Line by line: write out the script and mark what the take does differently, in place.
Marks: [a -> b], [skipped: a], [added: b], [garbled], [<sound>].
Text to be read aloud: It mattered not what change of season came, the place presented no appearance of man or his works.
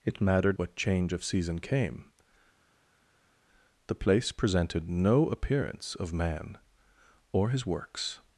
It mattered [skipped: not] what change of season came, the place presented no appearance of man or his works.